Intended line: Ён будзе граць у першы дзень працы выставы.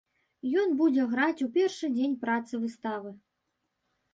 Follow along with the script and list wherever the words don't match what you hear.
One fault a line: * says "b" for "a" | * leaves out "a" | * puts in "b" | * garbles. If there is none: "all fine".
all fine